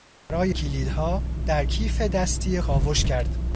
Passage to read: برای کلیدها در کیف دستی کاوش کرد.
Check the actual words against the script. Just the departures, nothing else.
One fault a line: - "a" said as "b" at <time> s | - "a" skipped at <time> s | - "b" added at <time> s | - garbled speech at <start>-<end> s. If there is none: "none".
none